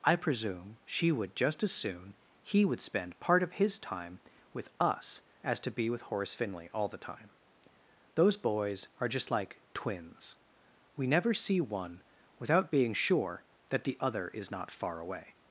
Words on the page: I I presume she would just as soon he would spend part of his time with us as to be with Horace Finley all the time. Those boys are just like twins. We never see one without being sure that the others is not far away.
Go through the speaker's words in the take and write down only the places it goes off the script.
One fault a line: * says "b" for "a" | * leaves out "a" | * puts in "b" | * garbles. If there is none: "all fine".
* leaves out "I"
* says "other" for "others"